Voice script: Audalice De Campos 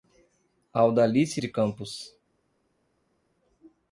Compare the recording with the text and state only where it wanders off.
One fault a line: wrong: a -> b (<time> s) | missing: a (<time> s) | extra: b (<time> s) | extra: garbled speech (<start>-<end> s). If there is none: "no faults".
no faults